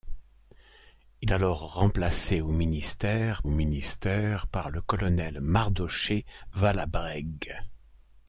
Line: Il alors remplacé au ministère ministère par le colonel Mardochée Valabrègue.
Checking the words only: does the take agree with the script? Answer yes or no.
yes